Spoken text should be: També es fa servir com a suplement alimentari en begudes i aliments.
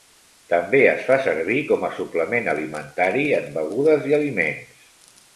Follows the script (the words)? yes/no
yes